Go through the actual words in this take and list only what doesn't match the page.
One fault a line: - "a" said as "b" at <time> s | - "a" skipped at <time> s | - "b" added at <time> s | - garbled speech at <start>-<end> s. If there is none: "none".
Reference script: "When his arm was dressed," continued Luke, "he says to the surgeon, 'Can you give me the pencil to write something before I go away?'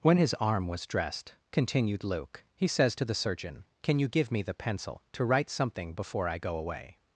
none